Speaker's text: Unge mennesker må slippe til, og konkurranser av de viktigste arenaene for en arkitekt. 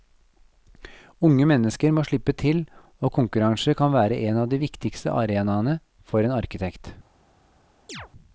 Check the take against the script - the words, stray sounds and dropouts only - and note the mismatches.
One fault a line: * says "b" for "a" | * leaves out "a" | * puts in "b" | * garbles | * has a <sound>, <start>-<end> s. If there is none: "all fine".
* puts in "kan være en"
* has a chirp, 7.9-8.1 s